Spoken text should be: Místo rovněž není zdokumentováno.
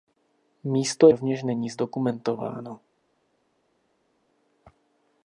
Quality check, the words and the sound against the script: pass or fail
pass